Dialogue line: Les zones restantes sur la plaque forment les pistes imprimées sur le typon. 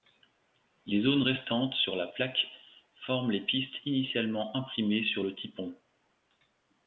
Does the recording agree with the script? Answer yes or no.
no